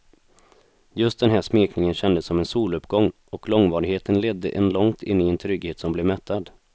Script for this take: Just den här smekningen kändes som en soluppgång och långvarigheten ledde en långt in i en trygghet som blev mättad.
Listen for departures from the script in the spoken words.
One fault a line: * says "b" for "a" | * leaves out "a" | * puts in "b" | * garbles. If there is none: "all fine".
all fine